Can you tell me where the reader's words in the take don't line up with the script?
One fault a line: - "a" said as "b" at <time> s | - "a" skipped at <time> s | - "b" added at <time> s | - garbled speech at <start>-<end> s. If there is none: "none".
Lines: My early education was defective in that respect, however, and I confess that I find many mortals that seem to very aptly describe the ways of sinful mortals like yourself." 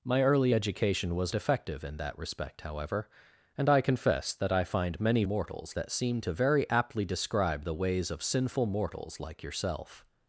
none